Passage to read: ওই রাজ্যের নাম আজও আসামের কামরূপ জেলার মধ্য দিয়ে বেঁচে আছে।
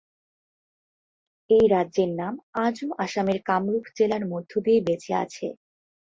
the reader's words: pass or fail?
fail